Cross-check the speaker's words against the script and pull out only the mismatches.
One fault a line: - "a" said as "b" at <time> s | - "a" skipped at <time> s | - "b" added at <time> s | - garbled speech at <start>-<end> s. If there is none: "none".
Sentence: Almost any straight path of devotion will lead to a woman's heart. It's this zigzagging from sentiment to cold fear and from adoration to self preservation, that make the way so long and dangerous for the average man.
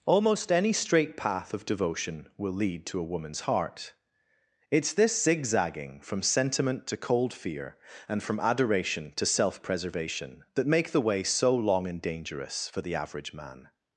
none